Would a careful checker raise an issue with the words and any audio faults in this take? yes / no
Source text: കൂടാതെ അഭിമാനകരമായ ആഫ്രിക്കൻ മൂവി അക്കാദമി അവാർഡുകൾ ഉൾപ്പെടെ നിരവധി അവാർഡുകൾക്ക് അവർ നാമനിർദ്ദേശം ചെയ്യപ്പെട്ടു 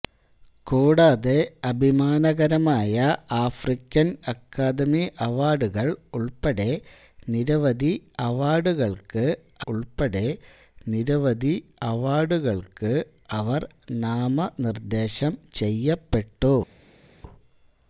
yes